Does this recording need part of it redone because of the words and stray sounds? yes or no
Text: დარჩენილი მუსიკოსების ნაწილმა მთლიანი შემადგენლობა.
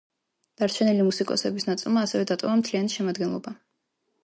yes